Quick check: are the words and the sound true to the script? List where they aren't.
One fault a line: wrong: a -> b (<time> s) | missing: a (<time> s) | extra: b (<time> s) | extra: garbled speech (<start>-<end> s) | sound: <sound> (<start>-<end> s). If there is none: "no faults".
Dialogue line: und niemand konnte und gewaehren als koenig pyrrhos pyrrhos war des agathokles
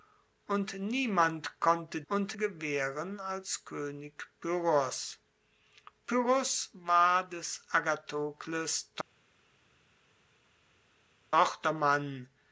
no faults